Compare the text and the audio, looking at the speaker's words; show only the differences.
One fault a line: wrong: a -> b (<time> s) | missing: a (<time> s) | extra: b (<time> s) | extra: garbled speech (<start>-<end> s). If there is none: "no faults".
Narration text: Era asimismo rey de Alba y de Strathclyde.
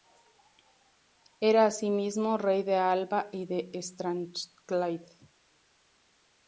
no faults